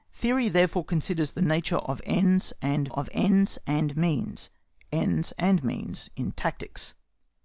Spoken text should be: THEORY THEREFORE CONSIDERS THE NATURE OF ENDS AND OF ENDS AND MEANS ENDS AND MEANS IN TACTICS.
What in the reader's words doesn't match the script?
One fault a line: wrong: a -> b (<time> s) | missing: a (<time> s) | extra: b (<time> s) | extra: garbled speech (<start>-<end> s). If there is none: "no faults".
no faults